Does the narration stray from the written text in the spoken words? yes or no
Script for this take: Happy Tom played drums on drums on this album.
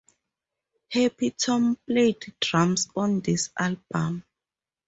yes